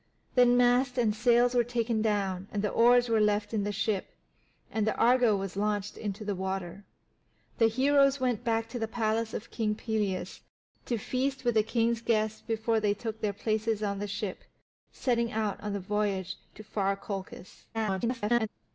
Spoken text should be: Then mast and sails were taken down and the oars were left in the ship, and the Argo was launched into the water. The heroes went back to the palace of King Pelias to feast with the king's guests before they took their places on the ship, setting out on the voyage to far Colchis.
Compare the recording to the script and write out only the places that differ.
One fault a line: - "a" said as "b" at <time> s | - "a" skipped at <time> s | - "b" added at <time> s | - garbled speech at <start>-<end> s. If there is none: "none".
- garbled speech at 17.7-18.5 s